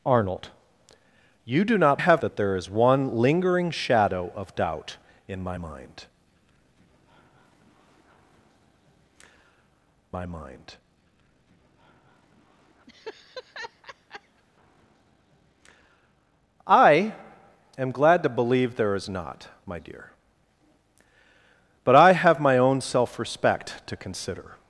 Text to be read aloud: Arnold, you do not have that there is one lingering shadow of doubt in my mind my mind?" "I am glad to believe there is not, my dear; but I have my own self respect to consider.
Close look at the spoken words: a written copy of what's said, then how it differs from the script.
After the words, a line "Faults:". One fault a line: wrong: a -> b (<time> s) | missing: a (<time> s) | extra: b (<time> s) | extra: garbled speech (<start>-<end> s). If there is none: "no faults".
Arnold, you do not have that there is one lingering shadow of doubt in my mind my mind?" "I am glad to believe there is not, my dear; but I have my own self respect to consider.
Faults:
no faults